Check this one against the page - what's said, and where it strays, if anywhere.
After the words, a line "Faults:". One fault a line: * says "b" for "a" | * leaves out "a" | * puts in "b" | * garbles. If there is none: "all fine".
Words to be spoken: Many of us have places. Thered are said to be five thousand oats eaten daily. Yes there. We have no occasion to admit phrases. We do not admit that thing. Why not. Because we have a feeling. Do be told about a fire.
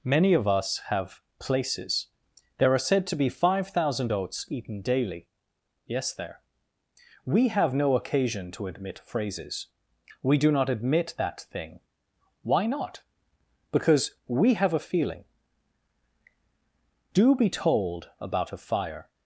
Many of us have places. There are said to be five thousand oats eaten daily. Yes there. We have no occasion to admit phrases. We do not admit that thing. Why not. Because we have a feeling. Do be told about a fire.
Faults:
* says "There" for "Thered"